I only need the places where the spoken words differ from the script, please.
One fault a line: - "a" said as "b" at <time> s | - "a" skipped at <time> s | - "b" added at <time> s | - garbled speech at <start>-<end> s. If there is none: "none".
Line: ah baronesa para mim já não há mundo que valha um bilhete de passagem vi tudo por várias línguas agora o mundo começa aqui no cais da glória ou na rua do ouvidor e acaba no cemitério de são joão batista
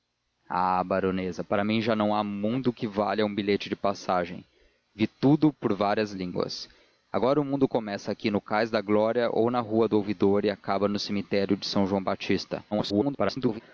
- garbled speech at 12.7-13.6 s